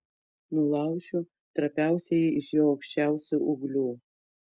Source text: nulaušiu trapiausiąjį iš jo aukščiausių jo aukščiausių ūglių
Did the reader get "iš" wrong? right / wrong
right